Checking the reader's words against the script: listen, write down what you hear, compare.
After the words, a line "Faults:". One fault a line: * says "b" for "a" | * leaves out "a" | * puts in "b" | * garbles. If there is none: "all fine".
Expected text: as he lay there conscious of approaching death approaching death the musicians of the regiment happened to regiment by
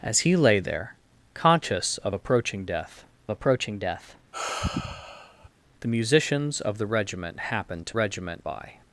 as he lay there conscious of approaching death approaching death the musicians of the regiment happened to regiment by
Faults:
all fine